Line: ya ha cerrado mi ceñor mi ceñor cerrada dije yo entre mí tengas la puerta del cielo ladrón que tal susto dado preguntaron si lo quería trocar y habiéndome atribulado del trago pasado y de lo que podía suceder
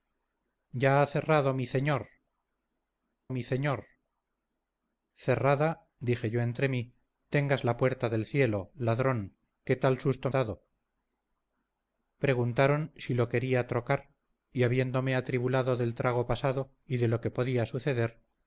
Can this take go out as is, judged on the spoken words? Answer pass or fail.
pass